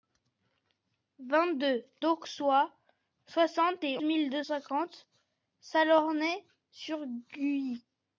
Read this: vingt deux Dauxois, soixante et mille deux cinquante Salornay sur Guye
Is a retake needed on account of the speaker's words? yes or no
no